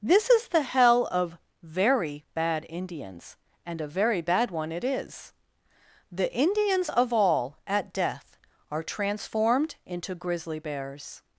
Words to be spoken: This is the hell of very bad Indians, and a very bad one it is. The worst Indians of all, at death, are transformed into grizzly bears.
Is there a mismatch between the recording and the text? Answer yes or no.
yes